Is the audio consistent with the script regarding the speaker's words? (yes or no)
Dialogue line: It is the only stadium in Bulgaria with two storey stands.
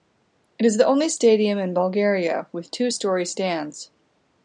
yes